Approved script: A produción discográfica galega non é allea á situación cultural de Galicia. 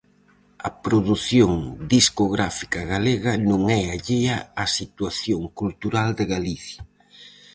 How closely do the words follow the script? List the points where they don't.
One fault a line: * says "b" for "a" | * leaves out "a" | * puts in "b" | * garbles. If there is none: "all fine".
all fine